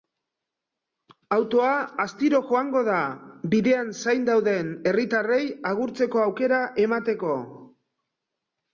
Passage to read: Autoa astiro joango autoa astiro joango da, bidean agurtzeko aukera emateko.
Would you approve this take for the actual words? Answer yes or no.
no